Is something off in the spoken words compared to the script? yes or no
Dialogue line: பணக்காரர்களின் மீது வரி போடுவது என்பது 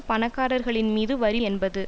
yes